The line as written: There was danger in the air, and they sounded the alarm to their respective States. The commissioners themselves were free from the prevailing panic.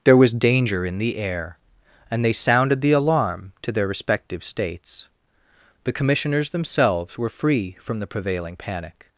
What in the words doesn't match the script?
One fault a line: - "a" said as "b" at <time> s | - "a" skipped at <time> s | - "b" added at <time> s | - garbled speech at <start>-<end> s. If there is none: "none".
none